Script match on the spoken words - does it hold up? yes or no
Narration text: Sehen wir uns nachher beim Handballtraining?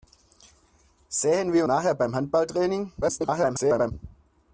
no